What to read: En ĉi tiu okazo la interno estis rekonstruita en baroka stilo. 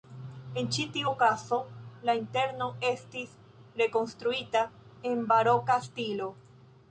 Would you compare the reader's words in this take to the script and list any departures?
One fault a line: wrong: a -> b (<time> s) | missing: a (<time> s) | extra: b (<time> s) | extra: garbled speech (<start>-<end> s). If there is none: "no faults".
no faults